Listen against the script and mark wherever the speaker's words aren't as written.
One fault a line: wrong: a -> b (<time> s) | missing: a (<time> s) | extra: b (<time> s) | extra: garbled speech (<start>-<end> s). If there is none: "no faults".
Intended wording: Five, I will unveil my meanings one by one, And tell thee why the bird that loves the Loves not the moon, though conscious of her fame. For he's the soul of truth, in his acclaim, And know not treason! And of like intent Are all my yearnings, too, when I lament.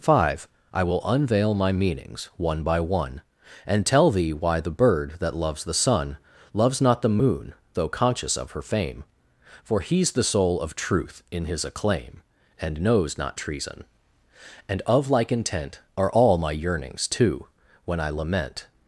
extra: sun (5.8 s)
wrong: know -> knows (12.8 s)